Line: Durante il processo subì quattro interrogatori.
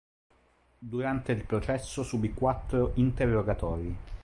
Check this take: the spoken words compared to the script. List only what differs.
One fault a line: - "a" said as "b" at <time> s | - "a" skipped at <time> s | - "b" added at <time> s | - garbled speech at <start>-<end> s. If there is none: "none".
none